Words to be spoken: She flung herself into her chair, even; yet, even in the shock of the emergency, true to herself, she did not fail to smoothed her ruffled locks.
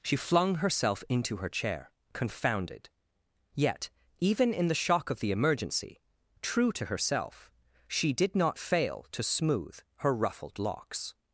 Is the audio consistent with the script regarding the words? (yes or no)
no